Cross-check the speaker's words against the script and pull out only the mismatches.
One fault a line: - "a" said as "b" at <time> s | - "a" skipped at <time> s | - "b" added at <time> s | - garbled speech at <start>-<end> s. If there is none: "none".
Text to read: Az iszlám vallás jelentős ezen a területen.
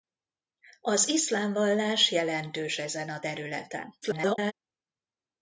- garbled speech at 4.0-4.5 s